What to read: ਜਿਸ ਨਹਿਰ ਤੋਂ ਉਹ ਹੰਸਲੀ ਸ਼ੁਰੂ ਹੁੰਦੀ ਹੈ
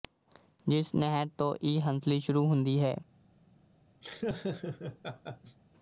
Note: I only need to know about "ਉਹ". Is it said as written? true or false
false